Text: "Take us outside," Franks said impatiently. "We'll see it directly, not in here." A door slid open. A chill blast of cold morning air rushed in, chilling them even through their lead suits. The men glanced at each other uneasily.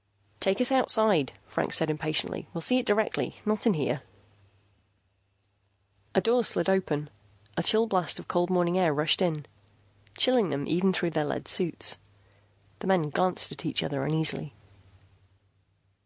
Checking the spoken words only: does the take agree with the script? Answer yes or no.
yes